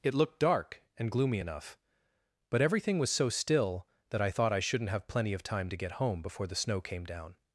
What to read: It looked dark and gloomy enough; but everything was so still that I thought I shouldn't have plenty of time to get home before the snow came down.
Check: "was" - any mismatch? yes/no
no